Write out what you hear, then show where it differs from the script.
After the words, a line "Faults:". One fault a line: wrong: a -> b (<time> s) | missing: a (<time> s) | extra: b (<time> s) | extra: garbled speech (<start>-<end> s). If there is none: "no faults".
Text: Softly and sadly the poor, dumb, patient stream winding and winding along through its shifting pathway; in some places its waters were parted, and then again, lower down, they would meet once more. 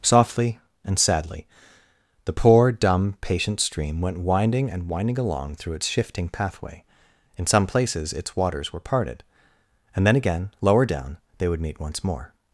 Softly and sadly the poor, dumb, patient stream went winding and winding along through its shifting pathway; in some places its waters were parted, and then again, lower down, they would meet once more.
Faults:
extra: went (4.0 s)